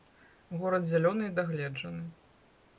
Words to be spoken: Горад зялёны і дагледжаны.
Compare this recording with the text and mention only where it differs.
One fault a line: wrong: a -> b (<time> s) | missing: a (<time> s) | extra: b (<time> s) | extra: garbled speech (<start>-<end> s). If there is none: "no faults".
no faults